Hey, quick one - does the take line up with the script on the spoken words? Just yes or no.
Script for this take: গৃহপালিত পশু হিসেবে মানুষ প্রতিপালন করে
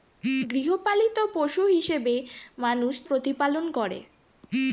yes